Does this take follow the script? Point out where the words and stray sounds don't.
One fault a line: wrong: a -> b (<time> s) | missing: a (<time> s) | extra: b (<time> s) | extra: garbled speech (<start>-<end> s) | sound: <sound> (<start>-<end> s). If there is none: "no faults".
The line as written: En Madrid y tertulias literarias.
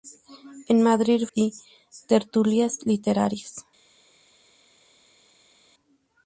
no faults